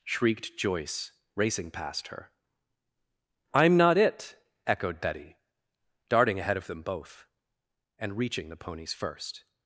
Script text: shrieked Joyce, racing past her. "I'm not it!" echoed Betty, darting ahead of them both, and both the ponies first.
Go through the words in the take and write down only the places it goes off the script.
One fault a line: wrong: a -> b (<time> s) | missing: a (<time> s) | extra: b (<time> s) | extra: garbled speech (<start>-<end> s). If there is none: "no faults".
wrong: both -> reaching (8.2 s)